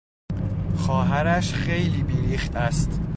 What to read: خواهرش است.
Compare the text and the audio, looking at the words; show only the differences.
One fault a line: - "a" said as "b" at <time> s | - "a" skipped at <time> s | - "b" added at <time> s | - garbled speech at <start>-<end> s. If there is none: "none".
- "خیلی بیریخت" added at 1.5 s